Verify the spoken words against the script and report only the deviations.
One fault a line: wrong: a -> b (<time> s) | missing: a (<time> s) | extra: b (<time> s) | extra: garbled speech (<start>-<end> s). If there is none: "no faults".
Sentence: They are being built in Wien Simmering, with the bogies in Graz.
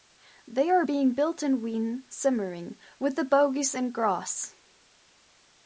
no faults